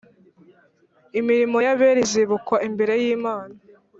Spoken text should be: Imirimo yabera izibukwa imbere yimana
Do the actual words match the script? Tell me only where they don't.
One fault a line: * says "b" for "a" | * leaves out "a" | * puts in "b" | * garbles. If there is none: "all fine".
all fine